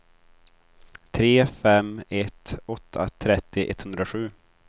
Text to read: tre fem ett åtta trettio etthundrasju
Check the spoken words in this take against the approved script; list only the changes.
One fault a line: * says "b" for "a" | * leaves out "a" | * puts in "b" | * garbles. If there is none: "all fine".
all fine